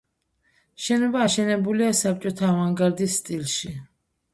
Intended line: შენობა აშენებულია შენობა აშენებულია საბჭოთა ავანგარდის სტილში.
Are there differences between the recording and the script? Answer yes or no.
yes